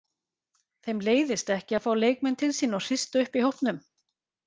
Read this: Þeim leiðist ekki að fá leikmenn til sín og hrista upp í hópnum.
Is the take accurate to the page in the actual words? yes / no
yes